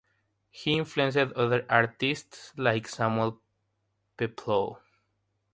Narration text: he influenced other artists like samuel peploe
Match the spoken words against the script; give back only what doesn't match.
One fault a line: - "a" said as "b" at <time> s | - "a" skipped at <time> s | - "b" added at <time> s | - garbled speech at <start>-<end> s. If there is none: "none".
none